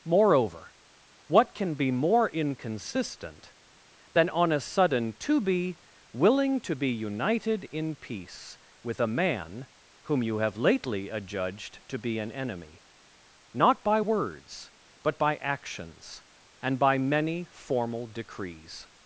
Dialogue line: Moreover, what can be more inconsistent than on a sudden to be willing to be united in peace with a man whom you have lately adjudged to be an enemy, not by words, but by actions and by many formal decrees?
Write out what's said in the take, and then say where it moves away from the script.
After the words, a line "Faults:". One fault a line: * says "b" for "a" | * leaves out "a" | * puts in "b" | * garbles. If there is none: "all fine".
Moreover, what can be more inconsistent than on a sudden to be willing to be united in peace with a man whom you have lately adjudged to be an enemy, not by words, but by actions and by many formal decrees?
Faults:
all fine